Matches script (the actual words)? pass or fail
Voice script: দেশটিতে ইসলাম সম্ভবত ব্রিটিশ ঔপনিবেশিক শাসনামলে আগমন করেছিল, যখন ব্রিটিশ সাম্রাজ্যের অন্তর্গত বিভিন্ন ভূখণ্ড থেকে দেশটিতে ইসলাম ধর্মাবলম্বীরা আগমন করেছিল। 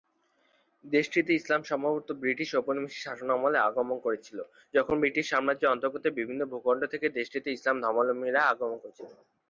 pass